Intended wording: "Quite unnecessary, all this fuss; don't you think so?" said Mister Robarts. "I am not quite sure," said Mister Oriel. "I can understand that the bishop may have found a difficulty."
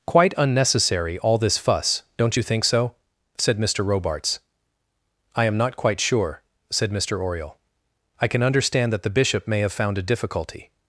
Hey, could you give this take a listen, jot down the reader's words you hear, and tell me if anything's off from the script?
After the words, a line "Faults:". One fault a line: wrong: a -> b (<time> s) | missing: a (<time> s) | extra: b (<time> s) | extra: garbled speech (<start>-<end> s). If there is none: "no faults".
"Quite unnecessary, all this fuss; don't you think so?" said Mister Robarts. "I am not quite sure," said Mister Oriel. "I can understand that the bishop may have found a difficulty."
Faults:
no faults